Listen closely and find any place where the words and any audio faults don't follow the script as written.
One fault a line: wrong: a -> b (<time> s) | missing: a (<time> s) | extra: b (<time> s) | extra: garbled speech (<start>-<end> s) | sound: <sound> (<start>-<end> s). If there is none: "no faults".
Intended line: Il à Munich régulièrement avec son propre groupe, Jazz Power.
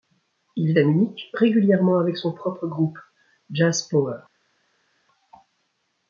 no faults